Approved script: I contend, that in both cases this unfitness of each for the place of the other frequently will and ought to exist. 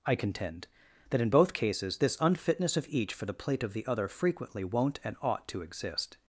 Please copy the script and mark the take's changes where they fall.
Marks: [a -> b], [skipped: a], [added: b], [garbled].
I contend, that in both cases this unfitness of each for the [place -> plate] of the other frequently [will -> won't] and ought to exist.